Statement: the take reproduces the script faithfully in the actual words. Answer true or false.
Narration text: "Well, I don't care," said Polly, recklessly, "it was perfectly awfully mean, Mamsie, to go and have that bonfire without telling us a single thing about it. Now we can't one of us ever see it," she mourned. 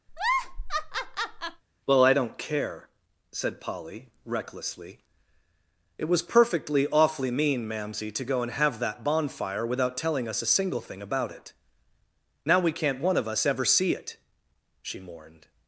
true